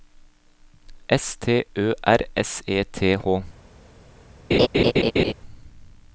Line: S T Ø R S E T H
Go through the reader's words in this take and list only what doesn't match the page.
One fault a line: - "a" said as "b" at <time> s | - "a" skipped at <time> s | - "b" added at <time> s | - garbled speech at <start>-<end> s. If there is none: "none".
none